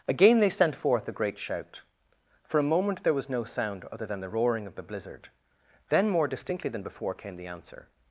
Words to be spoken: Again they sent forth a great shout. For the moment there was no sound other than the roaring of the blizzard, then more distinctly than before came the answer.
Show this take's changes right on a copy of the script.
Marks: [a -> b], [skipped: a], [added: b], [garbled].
Again they sent forth a great shout. For [the -> a] moment there was no sound other than the roaring of the blizzard, then more distinctly than before came the answer.